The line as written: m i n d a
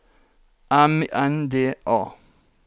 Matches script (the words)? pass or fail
fail